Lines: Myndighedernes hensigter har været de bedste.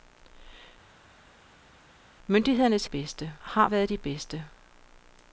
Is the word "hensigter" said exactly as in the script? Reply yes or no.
no